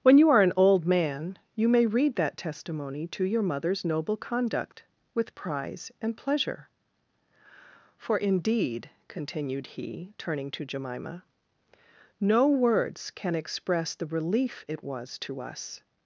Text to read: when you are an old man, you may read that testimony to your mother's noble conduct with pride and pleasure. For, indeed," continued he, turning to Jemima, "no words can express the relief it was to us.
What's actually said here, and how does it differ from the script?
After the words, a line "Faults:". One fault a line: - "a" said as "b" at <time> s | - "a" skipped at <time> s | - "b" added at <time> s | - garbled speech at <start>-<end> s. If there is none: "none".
when you are an old man, you may read that testimony to your mother's noble conduct with prize and pleasure. For, indeed," continued he, turning to Jemima, "no words can express the relief it was to us.
Faults:
- "pride" said as "prize" at 5.3 s